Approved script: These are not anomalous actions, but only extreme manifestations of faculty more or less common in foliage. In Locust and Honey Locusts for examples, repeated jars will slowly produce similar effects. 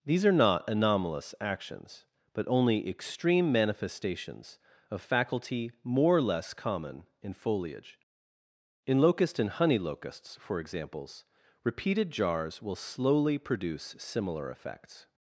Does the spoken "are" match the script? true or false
true